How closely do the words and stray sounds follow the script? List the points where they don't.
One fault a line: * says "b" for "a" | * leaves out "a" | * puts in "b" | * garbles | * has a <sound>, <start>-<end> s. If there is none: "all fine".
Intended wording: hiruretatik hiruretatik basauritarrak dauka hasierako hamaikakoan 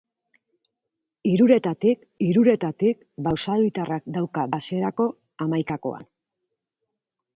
all fine